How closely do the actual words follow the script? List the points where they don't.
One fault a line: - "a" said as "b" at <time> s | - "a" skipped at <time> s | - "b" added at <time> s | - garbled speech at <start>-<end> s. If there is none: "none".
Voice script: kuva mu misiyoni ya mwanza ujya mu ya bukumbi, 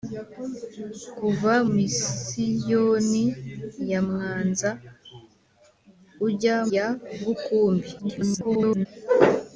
- "mu" skipped at 1.5 s
- "mu" skipped at 6.6 s
- garbled speech at 8.0-8.9 s